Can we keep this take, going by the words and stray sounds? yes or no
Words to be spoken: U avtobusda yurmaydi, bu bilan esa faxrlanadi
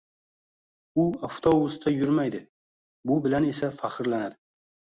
yes